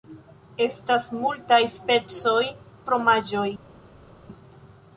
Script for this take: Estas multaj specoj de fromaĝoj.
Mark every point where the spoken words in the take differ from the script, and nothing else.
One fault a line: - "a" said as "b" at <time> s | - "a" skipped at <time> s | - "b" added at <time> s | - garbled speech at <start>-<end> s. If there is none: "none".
- "de" skipped at 2.4 s